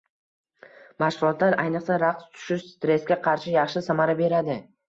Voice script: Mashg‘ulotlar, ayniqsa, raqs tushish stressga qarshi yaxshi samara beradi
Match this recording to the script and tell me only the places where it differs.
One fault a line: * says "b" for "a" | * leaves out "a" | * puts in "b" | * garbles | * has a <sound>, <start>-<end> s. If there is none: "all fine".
all fine